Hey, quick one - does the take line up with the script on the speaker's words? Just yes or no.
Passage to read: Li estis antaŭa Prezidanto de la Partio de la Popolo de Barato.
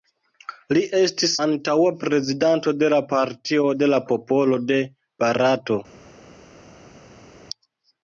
yes